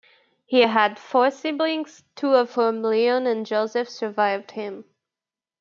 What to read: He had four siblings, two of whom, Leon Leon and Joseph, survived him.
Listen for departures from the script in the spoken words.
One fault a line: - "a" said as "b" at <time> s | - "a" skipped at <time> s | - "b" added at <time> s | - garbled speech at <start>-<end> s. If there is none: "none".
- "Leon" skipped at 3.3 s